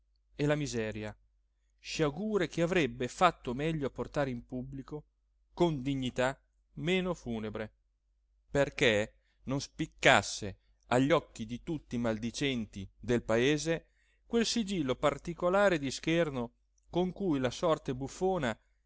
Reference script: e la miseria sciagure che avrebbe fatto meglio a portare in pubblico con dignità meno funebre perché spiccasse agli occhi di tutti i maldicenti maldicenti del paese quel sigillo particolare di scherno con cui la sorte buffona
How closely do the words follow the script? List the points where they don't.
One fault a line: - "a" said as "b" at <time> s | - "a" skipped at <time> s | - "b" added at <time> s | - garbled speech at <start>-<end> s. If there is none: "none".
- "non" added at 9.4 s
- "maldicenti" skipped at 12.9 s